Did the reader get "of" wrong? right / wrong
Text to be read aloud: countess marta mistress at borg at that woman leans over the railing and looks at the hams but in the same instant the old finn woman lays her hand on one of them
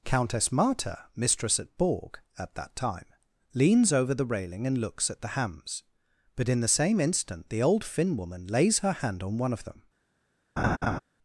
right